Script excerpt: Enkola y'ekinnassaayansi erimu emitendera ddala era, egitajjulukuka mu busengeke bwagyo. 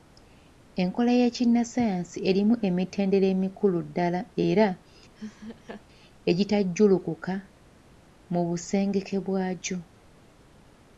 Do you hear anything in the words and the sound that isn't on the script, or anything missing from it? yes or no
yes